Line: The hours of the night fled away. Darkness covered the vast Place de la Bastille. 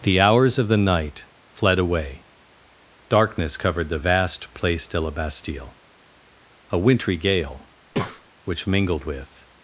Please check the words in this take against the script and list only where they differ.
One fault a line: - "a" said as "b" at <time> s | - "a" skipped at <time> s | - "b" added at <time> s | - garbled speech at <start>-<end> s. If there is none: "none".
- "A wintry gale which mingled with" added at 6.7 s